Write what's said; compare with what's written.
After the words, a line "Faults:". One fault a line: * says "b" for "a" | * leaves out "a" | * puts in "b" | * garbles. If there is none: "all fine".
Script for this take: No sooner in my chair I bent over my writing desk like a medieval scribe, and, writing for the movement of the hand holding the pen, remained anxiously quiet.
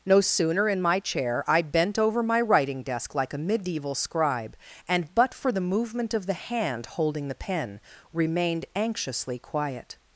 No sooner in my chair I bent over my writing desk like a medieval scribe, and, but for the movement of the hand holding the pen, remained anxiously quiet.
Faults:
* says "but" for "writing"